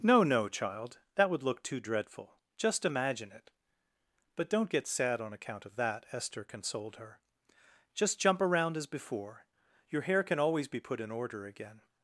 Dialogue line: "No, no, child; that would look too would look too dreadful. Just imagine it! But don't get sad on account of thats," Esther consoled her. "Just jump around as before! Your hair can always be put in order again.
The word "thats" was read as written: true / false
false